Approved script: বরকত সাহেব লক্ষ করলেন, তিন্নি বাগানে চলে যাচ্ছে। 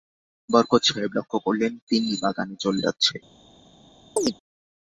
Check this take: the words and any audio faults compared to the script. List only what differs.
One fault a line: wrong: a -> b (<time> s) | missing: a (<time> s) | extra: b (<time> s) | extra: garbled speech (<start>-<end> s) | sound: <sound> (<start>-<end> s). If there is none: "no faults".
sound: chirp (4.2-4.3 s)